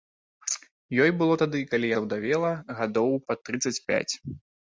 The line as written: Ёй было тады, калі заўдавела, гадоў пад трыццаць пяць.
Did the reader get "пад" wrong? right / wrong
right